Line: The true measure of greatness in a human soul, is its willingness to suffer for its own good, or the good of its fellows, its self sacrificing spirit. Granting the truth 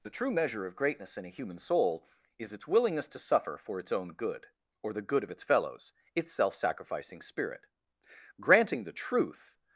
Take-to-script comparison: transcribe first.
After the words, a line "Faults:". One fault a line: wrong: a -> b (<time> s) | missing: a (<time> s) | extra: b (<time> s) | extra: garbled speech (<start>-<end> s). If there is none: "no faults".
The true measure of greatness in a human soul, is its willingness to suffer for its own good, or the good of its fellows, its self sacrificing spirit. Granting the truth
Faults:
no faults